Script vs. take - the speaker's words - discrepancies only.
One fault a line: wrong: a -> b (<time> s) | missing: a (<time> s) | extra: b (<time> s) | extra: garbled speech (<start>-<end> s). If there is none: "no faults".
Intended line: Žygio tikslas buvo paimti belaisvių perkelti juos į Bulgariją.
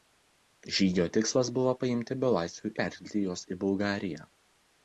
no faults